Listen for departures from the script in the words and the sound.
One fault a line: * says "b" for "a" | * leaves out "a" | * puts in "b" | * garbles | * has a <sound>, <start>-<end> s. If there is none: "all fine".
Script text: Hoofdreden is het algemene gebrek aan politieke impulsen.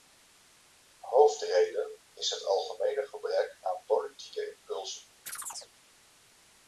* has a chirp, 5.3-5.7 s